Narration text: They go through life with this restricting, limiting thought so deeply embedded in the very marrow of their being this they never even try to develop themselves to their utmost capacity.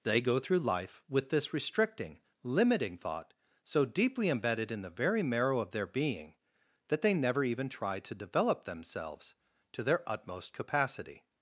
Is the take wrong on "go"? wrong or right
right